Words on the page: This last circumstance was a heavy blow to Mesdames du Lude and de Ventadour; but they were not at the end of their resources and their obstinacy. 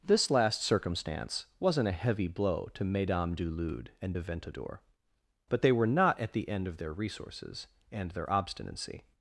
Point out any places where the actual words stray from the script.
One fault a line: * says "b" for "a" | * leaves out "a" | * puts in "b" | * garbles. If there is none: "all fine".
* says "wasn't" for "was"